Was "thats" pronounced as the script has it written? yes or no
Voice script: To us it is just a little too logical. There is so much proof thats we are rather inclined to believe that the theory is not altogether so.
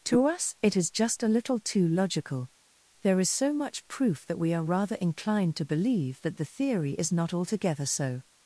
no